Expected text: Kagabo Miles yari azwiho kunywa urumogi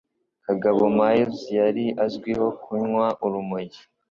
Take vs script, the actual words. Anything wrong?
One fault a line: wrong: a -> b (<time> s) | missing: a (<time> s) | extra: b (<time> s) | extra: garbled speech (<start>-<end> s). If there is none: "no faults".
no faults